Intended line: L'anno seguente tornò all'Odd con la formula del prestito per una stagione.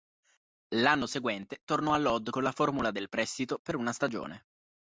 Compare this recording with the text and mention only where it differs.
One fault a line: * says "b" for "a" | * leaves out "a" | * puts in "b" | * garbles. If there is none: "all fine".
all fine